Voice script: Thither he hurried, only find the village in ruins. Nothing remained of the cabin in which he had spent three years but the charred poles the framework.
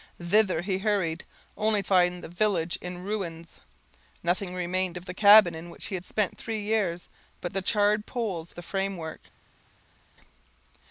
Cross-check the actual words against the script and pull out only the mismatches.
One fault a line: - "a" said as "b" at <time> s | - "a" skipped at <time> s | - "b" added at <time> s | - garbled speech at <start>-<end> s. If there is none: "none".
none